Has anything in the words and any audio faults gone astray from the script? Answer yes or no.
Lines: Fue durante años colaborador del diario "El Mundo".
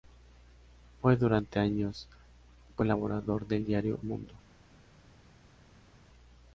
yes